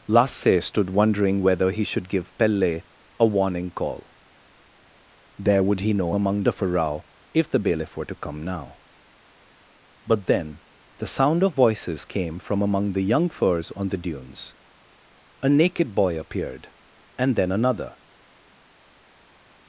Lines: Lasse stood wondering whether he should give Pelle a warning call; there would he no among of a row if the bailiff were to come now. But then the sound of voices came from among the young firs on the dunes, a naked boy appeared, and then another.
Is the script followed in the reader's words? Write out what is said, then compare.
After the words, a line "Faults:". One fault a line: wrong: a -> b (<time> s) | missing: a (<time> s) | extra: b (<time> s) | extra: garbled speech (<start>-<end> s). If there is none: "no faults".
Lasse stood wondering whether he should give Pelle a warning call; there would he no among of a row if the bailiff were to come now. But then the sound of voices came from among the young firs on the dunes, a naked boy appeared, and then another.
Faults:
no faults